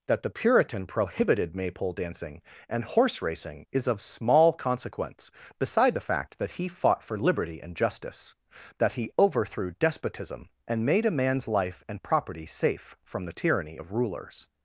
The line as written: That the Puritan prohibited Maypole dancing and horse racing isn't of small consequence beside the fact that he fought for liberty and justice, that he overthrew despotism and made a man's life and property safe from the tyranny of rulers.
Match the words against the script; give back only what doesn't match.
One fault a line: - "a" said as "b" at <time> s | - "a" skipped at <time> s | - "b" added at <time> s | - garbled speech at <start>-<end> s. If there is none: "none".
- "isn't" said as "is" at 3.7 s